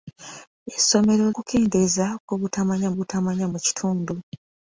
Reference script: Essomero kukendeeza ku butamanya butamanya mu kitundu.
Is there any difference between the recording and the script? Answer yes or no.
no